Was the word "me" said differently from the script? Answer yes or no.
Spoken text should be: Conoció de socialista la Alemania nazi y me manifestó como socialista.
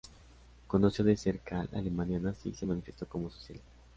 yes